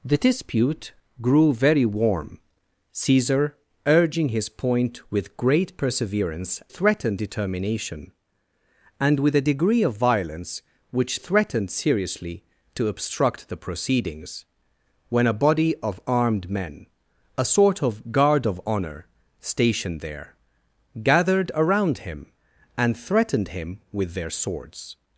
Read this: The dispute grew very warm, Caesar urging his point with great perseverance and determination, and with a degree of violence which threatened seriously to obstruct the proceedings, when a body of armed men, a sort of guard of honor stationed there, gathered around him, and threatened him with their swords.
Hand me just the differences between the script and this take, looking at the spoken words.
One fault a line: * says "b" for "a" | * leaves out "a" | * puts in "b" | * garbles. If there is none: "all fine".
* says "threatened" for "and"